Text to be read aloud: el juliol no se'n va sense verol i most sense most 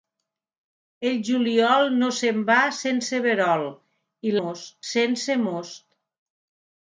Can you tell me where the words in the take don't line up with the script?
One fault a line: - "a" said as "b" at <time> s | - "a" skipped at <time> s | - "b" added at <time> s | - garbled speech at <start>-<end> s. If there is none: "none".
none